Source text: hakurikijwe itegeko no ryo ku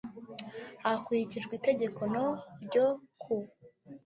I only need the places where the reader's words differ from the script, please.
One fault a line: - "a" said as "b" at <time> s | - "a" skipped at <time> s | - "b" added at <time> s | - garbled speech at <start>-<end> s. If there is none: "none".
none